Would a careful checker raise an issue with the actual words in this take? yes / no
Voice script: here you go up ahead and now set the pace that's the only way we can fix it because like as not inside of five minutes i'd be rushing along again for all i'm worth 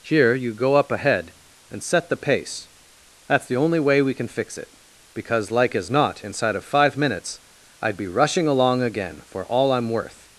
yes